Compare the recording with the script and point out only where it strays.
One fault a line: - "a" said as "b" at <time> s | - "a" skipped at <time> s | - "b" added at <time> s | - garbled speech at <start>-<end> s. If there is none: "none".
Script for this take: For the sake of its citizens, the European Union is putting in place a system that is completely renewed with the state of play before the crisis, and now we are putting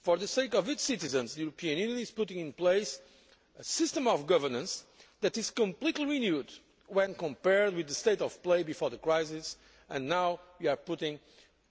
- "of governance" added at 4.1 s
- "when compared" added at 6.9 s